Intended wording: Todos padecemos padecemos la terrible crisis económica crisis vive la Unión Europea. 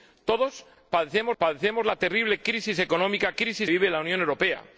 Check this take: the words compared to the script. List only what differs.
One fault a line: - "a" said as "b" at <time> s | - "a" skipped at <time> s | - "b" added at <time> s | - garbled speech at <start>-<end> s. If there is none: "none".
none